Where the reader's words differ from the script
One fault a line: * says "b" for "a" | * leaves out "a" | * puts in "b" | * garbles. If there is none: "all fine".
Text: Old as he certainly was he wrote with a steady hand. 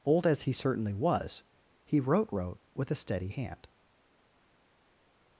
* puts in "wrote"